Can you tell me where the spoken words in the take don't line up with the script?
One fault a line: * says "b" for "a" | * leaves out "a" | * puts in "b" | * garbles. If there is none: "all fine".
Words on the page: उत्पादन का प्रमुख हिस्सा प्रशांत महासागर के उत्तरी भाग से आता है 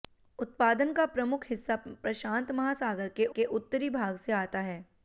* puts in "के"